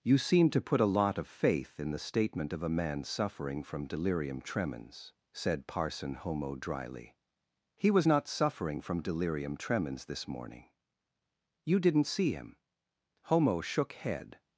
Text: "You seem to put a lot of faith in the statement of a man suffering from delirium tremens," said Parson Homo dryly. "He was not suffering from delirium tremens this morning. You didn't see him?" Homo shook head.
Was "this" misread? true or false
false